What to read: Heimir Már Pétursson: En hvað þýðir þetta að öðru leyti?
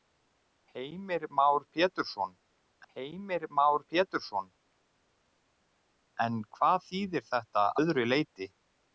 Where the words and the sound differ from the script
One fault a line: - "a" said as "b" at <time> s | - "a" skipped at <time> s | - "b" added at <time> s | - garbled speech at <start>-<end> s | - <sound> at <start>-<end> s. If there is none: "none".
- "heimir Már Pétursson" added at 2.9 s
- "að" skipped at 7.7 s